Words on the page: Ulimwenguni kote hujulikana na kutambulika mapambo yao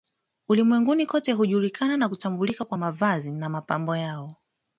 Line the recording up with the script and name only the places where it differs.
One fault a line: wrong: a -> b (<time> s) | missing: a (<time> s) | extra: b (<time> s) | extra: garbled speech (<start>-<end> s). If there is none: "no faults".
extra: kwa mavazi na (2.6 s)